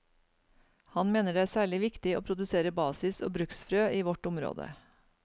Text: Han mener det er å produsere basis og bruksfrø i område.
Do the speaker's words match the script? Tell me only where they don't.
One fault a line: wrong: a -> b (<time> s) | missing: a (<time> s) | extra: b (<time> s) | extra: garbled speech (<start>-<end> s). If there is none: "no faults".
extra: særlig viktig (1.5 s)
extra: vårt (4.1 s)